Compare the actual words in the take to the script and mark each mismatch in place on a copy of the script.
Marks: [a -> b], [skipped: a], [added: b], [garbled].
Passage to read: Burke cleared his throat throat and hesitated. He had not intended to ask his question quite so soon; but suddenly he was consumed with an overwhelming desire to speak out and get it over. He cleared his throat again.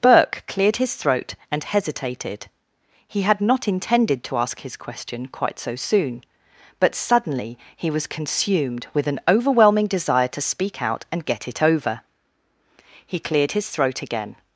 Burke cleared his throat [skipped: throat] and hesitated. He had not intended to ask his question quite so soon; but suddenly he was consumed with an overwhelming desire to speak out and get it over. He cleared his throat again.